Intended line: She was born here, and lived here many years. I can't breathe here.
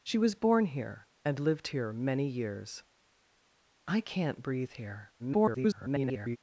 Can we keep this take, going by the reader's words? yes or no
no